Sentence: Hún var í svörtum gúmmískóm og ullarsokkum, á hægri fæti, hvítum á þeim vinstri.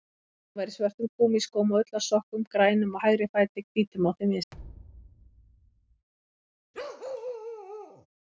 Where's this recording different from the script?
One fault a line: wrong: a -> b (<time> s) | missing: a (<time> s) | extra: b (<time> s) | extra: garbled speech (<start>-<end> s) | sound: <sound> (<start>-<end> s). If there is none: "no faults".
extra: grænum (2.6 s)
sound: thud (4.5-6.1 s)
sound: bark (6.7-8.1 s)